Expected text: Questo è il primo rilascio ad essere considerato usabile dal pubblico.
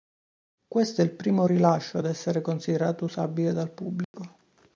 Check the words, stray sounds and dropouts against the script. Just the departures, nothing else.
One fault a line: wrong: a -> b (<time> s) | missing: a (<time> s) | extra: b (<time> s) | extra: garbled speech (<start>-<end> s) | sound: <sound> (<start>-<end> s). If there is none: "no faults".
sound: dropout (4.0-4.1 s)